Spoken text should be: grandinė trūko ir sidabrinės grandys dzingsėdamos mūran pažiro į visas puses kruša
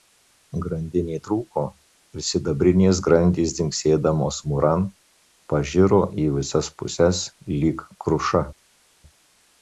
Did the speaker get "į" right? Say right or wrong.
right